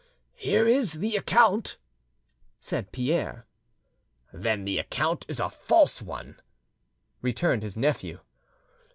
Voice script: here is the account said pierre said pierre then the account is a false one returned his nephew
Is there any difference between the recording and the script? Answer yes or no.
yes